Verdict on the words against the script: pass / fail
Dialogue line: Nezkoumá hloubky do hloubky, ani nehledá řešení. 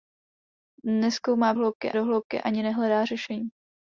pass